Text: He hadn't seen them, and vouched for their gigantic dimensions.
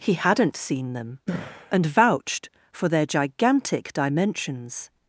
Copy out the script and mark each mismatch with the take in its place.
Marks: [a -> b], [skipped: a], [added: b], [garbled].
He hadn't seen them, and vouched for their gigantic dimensions.